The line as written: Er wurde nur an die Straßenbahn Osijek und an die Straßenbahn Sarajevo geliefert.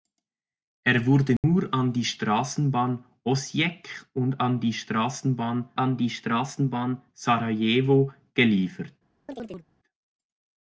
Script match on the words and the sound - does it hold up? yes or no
no